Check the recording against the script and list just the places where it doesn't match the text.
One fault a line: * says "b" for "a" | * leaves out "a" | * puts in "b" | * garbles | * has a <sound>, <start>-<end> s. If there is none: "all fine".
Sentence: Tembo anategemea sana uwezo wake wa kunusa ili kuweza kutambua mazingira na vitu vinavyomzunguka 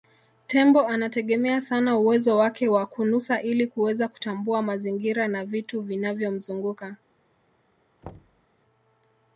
* has a thud, 8.0-8.5 s